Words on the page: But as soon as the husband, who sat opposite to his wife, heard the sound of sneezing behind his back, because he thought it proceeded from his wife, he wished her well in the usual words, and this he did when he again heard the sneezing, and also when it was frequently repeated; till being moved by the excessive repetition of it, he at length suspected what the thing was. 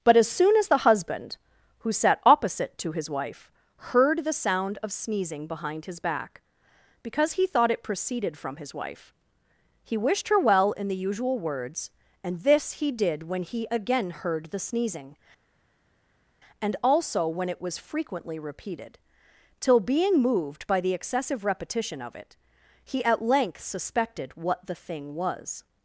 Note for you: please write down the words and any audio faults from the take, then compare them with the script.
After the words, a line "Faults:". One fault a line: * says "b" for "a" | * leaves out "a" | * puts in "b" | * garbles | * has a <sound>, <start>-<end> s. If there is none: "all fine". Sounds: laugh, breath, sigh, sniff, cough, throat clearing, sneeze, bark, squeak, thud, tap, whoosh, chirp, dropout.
But as soon as the husband, who sat opposite to his wife, heard the sound of sneezing behind his back, because he thought it proceeded from his wife, he wished her well in the usual words, and this he did when he again heard the sneezing, and also when it was frequently repeated; till being moved by the excessive repetition of it, he at length suspected what the thing was.
Faults:
all fine